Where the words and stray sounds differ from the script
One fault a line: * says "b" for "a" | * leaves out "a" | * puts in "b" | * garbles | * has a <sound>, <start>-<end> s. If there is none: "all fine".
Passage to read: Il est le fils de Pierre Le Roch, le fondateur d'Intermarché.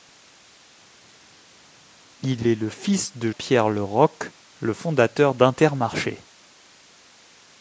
all fine